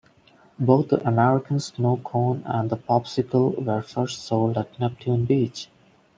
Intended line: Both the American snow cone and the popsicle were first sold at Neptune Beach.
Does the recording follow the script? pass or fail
pass